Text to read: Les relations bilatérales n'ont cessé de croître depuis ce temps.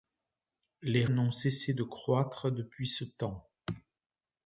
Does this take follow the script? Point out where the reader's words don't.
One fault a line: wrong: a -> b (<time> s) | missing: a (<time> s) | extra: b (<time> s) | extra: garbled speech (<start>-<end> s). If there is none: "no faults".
missing: relations bilatérales (1.1 s)